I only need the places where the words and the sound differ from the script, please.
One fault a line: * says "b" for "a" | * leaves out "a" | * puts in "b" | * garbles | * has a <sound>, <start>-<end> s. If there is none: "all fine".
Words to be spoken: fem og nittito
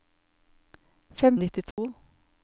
* has a dropout, 1.7-1.8 s